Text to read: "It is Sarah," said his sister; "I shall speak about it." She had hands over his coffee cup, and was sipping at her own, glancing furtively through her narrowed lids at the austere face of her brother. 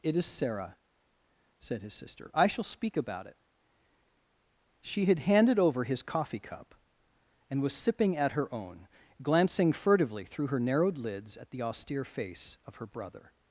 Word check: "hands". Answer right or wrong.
wrong